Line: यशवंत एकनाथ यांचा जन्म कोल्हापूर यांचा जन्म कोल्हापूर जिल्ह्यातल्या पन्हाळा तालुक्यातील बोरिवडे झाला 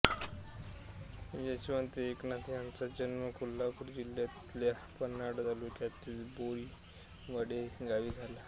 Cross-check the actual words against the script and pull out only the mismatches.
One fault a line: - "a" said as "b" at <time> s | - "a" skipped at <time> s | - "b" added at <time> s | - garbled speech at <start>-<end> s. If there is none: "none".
- "यांचा जन्म कोल्हापूर" skipped at 3.9 s
- "गावी" added at 7.8 s